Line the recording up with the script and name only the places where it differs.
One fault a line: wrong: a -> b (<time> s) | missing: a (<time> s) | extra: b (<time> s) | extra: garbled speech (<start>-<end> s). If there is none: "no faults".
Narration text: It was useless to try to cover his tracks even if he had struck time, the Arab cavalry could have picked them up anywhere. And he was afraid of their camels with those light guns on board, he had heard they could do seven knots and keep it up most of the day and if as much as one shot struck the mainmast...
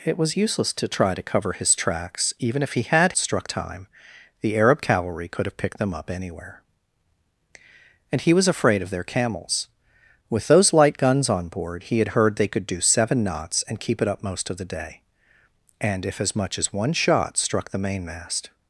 no faults